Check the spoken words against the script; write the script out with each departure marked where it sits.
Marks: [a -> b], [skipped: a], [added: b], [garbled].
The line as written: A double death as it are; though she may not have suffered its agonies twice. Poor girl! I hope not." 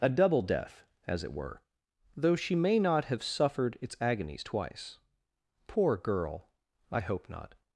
A double death as it [are; -> were] though she may not have suffered its agonies twice. Poor girl! I hope not."